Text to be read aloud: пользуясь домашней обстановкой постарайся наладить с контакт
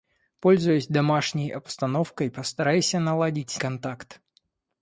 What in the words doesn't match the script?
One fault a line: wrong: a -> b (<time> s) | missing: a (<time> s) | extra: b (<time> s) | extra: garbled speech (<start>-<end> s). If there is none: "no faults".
no faults